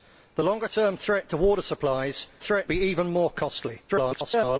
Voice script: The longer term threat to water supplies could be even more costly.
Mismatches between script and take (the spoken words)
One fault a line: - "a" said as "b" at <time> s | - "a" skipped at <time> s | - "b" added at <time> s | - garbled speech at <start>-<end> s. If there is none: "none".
- "could" said as "threat" at 2.4 s
- garbled speech at 3.9-4.6 s